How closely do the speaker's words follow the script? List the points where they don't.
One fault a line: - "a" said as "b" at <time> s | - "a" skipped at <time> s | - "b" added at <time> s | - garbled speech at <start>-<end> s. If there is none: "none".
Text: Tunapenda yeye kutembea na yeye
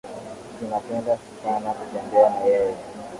- "yeye" said as "sana" at 1.4 s